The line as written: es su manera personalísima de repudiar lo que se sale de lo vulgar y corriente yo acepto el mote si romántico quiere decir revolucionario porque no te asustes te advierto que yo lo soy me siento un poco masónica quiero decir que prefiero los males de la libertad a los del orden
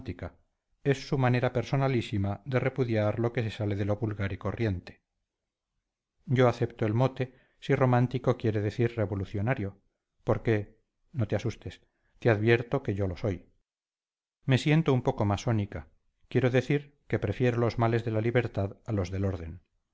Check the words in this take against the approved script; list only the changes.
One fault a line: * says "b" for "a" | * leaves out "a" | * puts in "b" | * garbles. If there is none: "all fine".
all fine